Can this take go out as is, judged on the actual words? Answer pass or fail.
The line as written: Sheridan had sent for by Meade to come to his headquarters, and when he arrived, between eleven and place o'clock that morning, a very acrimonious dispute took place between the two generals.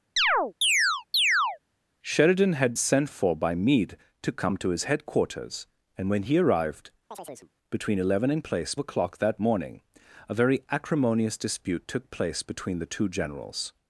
pass